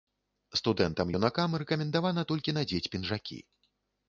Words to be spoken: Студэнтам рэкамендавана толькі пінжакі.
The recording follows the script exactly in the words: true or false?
false